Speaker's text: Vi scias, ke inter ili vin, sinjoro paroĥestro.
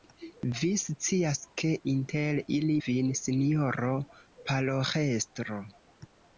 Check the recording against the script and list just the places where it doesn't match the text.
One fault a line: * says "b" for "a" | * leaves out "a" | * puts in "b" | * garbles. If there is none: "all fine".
all fine